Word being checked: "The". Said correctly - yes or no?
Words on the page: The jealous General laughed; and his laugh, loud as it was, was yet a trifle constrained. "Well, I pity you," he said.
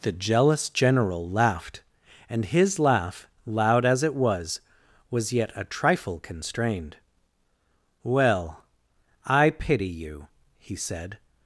yes